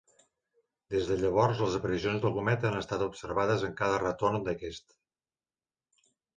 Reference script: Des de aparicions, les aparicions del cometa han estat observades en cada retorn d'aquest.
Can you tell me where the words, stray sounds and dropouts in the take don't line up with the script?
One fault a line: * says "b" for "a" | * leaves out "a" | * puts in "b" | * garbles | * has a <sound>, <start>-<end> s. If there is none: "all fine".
* says "llavors" for "aparicions"